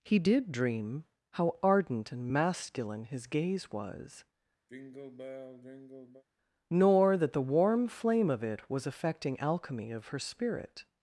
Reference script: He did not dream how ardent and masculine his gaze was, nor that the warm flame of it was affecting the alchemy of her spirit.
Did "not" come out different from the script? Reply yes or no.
yes